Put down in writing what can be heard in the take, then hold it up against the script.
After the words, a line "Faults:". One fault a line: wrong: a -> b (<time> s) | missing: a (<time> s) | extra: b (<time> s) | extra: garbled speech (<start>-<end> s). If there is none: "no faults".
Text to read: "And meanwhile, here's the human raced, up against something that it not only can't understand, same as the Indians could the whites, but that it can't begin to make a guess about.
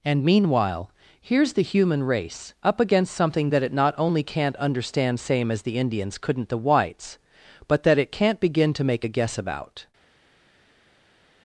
"And meanwhile, here's the human race, up against something that it not only can't understand, same as the Indians couldn't the whites, but that it can't begin to make a guess about.
Faults:
wrong: raced -> race (2.0 s)
wrong: could -> couldn't (6.2 s)